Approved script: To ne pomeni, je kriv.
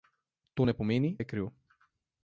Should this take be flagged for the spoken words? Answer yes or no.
no